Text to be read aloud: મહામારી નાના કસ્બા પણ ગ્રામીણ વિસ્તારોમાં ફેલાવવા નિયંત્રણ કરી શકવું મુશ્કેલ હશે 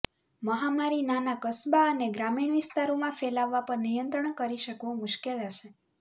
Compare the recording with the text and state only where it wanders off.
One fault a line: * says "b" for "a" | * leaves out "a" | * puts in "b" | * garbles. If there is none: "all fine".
* says "અને" for "પણ"
* puts in "પર"